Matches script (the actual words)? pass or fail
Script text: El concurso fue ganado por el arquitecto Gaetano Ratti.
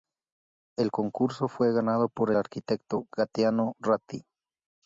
fail